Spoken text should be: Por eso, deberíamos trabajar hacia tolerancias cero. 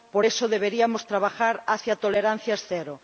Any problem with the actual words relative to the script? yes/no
no